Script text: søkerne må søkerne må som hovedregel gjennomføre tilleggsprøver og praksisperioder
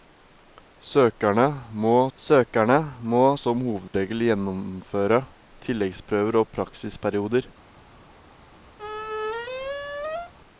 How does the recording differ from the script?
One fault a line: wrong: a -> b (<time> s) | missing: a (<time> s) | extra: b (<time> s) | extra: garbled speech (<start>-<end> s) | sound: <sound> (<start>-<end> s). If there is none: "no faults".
sound: dropout (3.9-3.9 s)
sound: squeak (8.8-10.3 s)